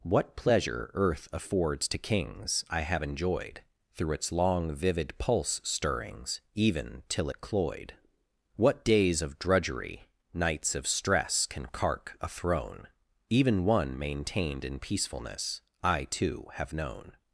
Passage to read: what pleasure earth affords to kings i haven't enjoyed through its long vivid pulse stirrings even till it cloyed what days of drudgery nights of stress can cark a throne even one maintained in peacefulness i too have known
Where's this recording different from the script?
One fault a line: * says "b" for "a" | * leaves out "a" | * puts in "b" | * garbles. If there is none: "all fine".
* says "have" for "haven't"